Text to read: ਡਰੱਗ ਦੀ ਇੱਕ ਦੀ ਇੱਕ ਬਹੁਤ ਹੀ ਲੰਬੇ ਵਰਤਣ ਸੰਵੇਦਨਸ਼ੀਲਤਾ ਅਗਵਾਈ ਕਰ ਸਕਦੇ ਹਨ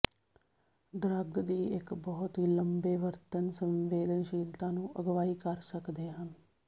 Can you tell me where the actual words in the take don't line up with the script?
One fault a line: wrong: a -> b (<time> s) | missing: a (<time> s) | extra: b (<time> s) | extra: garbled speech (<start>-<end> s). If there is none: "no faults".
missing: ਦੀ ਇੱਕ (1.9 s)
extra: ਨੂੰ (4.7 s)